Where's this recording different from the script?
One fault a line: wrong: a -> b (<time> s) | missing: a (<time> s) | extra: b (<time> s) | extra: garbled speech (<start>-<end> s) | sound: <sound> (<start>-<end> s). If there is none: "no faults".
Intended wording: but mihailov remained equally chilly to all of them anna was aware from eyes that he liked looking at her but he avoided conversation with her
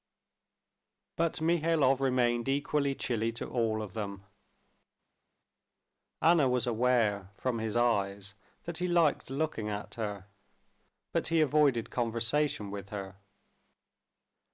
extra: his (7.6 s)